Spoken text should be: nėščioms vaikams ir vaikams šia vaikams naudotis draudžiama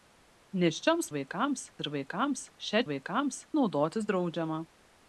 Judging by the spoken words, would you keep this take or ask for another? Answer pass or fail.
pass